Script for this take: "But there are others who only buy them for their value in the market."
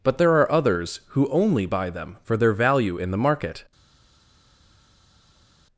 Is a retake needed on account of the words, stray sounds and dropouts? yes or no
no